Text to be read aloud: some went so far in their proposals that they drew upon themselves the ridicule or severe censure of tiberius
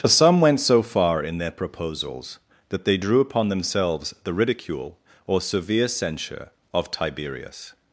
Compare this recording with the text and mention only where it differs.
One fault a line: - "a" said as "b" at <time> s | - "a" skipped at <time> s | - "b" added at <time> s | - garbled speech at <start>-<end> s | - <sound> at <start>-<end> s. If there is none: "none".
- "for" added at 0.0 s